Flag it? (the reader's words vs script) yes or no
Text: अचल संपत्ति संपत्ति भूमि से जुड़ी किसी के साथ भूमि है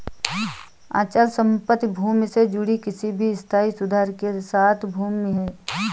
yes